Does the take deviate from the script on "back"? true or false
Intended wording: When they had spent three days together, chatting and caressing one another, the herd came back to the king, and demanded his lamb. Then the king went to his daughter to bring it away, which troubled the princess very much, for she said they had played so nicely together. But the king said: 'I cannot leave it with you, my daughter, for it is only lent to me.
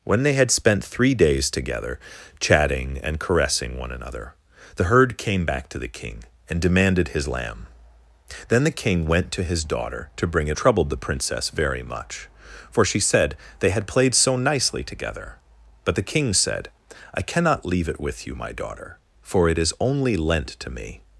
false